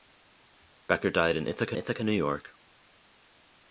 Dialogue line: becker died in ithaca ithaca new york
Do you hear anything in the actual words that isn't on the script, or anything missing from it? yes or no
no